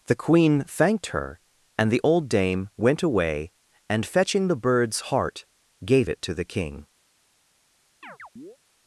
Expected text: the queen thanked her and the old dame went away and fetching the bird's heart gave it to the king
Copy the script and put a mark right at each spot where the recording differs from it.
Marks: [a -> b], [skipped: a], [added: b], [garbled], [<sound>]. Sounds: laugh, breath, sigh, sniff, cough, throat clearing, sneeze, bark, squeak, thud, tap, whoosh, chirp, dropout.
the queen thanked her and the old dame went away and fetching the bird's heart gave it to the king [chirp]